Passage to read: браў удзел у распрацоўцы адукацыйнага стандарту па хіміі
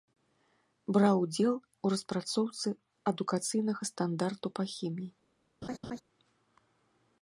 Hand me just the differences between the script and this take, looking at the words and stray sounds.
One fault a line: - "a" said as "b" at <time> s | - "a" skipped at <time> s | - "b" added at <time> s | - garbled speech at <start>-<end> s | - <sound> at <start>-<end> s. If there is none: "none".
- laugh at 5.6-6.0 s